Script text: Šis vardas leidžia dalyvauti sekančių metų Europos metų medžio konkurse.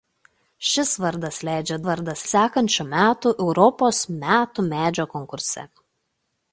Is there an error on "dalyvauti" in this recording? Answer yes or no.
yes